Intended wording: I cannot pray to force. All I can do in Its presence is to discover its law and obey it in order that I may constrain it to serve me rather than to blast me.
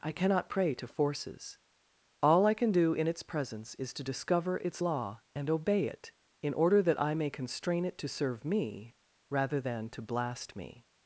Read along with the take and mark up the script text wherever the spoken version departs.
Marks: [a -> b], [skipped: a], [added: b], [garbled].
I cannot pray to [force. -> forces] All I can do in Its presence is to discover its law and obey it in order that I may constrain it to serve me rather than to blast me.